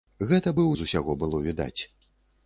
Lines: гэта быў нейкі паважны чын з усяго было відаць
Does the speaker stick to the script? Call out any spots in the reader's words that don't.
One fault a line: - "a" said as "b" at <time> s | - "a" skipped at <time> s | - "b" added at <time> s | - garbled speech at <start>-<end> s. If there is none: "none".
- "нейкі паважны чын" skipped at 0.7 s